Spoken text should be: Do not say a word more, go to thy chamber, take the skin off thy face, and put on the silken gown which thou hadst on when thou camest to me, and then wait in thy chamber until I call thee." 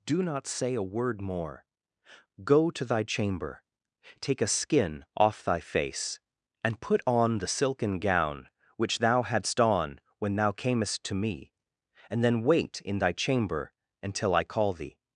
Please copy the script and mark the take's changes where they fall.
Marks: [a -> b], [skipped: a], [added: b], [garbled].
Do not say a word more, go to thy chamber, take [the -> a] skin off thy face, and put on the silken gown which thou hadst on when thou camest to me, and then wait in thy chamber until I call thee."